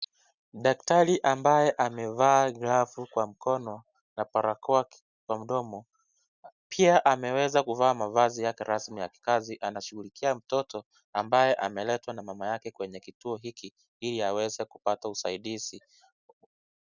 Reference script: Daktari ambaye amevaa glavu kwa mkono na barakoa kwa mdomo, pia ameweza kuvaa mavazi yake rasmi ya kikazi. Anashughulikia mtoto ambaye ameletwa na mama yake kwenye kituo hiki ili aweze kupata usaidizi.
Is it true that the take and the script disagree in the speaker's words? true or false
false